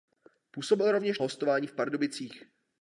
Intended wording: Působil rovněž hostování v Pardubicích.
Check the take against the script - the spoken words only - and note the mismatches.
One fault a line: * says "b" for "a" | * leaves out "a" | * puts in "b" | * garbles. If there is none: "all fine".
all fine